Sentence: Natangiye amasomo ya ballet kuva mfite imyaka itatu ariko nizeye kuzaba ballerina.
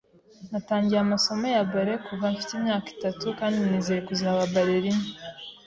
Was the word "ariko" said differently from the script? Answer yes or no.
yes